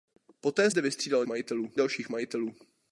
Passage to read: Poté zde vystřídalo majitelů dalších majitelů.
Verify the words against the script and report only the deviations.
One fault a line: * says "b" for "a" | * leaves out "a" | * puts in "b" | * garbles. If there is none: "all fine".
all fine